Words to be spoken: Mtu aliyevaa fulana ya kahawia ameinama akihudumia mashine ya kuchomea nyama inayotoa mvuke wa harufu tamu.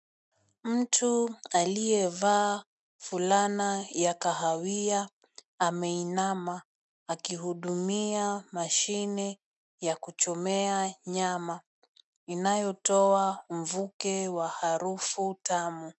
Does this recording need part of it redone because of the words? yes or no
no